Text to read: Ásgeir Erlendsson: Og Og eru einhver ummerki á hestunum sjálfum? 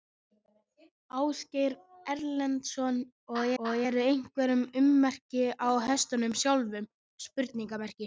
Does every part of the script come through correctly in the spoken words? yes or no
yes